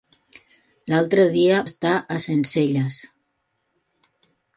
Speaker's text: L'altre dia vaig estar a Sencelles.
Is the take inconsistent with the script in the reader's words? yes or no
yes